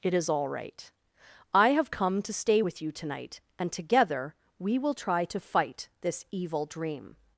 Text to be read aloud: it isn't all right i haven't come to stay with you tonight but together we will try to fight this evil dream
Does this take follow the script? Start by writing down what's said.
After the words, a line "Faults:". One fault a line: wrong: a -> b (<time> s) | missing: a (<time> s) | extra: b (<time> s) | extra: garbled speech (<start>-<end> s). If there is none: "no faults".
it is all right i have come to stay with you tonight and together we will try to fight this evil dream
Faults:
wrong: isn't -> is (0.1 s)
wrong: haven't -> have (1.7 s)
wrong: but -> and (3.6 s)